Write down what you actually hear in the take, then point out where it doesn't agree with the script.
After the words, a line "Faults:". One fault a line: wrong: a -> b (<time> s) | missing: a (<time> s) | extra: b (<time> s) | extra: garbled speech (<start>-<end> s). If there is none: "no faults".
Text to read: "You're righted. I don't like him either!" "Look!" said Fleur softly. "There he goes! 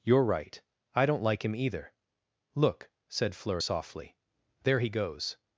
"You're right. I don't like him either!" "Look!" said Fleur softly. "There he goes!
Faults:
wrong: righted -> right (0.2 s)